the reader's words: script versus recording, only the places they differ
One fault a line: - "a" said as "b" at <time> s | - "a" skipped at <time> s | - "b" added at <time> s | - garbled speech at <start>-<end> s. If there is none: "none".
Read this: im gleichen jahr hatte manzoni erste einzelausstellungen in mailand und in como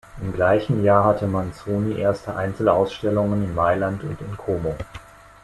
none